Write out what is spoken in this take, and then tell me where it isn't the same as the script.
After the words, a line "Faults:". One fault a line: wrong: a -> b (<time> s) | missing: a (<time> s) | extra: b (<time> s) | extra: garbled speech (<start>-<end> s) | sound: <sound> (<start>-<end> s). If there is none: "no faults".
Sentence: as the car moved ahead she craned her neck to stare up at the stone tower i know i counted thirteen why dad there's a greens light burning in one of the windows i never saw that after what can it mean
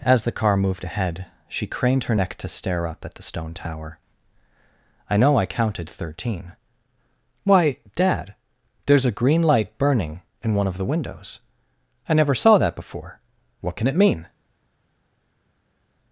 as the car moved ahead she craned her neck to stare up at the stone tower i know i counted thirteen why dad there's a green light burning in one of the windows i never saw that before what can it mean
Faults:
wrong: greens -> green (9.2 s)
wrong: after -> before (12.8 s)